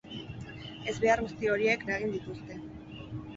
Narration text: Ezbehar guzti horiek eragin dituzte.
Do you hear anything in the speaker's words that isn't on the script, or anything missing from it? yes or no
no